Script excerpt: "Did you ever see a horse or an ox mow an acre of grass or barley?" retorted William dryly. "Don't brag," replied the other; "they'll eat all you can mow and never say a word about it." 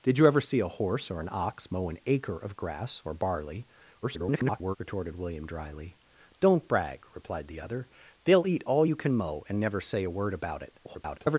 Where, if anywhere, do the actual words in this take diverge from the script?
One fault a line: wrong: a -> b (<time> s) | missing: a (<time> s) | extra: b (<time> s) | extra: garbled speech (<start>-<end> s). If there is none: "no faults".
extra: garbled speech (4.0-4.8 s)
extra: garbled speech (10.8-11.4 s)